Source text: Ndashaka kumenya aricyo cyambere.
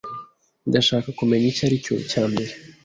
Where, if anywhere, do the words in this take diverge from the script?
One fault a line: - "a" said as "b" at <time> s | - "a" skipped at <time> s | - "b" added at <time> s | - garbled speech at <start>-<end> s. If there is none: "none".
- "icyo" added at 1.5 s